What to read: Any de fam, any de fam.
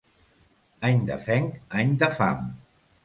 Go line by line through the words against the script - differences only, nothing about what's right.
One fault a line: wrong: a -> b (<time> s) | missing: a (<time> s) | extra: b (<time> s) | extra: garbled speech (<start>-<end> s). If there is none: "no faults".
wrong: fam -> fenc (1.2 s)